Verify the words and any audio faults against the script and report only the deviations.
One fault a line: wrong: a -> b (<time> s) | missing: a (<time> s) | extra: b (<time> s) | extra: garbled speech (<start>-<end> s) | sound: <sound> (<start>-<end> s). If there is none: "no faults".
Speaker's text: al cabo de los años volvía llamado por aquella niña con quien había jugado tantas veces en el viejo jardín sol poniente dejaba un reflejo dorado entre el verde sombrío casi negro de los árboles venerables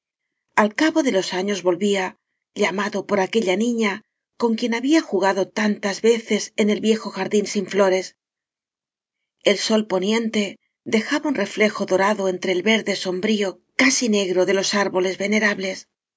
extra: sin flores el (7.5 s)